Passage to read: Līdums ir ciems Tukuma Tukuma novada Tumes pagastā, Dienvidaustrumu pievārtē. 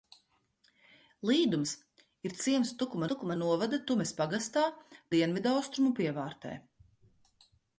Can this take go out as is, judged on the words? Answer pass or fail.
pass